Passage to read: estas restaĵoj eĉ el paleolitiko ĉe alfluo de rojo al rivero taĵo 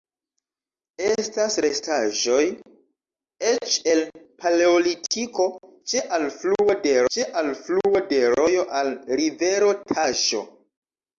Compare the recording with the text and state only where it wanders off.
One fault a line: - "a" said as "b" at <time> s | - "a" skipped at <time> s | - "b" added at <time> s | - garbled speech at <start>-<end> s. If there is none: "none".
- "ĉe alfluo de" added at 7.2 s